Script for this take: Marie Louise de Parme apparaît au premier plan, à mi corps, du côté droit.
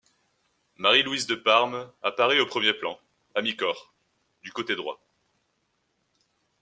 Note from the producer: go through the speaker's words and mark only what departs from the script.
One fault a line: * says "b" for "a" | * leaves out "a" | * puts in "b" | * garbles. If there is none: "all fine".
all fine